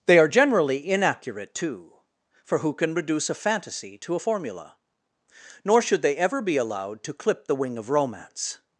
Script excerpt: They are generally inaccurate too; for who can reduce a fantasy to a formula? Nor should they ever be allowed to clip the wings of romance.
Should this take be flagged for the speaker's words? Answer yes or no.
yes